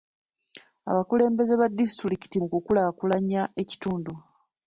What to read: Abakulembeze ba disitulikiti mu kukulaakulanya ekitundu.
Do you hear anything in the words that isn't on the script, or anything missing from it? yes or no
no